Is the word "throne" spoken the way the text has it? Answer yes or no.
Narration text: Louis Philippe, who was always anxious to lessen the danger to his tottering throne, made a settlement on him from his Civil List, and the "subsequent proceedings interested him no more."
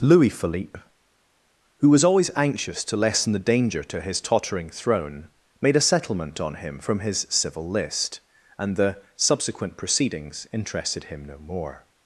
yes